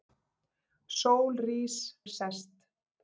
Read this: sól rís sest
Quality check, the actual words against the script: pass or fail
pass